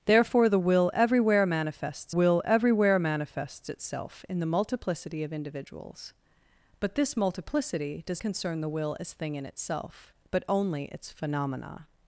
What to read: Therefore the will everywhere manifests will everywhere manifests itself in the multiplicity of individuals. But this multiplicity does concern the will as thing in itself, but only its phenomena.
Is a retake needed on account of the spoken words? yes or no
no